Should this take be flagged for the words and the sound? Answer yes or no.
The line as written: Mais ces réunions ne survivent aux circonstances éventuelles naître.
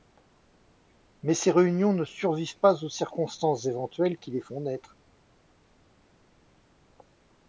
yes